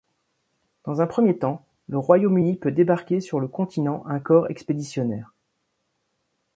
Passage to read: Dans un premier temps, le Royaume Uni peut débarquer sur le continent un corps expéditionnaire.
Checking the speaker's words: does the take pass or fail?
pass